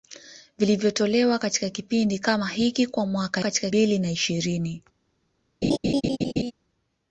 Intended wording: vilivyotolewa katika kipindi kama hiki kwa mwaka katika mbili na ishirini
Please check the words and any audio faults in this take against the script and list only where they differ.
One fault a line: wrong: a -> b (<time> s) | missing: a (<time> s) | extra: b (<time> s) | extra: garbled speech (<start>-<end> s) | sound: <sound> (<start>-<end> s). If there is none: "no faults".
sound: laugh (5.6-6.5 s)